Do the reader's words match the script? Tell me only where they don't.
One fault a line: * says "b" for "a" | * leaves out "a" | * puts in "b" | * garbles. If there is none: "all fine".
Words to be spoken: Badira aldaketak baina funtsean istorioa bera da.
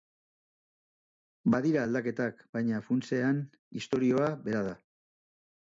all fine